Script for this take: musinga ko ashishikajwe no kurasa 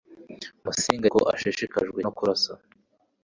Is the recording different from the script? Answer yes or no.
no